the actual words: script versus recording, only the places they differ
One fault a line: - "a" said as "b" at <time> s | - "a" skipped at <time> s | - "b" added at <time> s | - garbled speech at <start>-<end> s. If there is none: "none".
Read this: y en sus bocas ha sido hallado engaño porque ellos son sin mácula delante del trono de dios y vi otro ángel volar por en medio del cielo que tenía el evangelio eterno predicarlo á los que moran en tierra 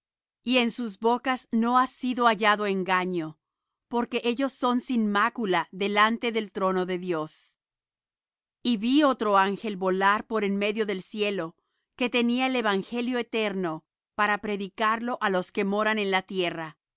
- "no" added at 1.5 s
- "para" added at 14.1 s
- "la" added at 16.1 s